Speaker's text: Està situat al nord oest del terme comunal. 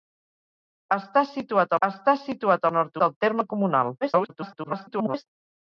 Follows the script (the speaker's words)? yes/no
no